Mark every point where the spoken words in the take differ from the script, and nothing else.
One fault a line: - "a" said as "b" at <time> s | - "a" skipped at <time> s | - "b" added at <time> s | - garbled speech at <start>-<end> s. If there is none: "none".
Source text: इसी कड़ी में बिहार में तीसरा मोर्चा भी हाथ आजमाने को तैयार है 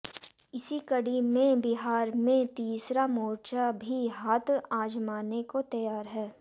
none